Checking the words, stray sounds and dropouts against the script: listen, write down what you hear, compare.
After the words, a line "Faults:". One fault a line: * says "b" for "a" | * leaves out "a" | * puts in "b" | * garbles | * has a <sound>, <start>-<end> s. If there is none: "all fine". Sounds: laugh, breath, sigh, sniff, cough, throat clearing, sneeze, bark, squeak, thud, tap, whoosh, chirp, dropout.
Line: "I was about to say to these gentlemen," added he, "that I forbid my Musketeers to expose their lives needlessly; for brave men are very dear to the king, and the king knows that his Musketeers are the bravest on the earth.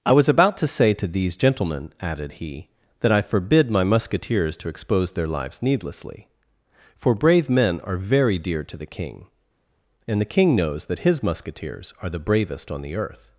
"I was about to say to these gentlemen," added he, "that I forbid my Musketeers to expose their lives needlessly; for brave men are very dear to the king, and the king knows that his Musketeers are the bravest on the earth.
Faults:
all fine